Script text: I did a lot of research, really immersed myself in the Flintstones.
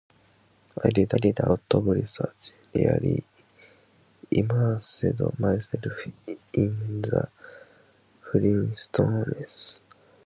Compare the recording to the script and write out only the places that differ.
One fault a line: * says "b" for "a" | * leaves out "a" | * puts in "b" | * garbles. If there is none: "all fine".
* puts in "did"